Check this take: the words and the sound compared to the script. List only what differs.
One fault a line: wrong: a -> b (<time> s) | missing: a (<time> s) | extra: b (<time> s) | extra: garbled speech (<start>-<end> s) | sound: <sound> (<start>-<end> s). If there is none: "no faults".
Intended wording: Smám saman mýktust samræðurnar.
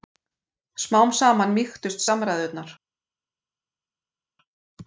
no faults